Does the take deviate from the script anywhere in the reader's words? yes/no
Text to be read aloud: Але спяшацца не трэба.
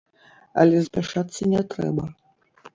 no